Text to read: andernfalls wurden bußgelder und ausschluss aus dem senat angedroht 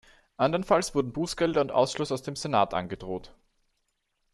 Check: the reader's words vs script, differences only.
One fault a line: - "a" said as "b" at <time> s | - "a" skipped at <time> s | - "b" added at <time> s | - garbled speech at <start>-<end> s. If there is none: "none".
none